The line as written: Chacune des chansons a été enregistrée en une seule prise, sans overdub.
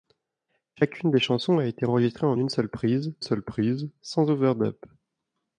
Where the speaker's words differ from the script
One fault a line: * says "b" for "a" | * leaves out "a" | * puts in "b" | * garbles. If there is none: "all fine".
* puts in "seule prise"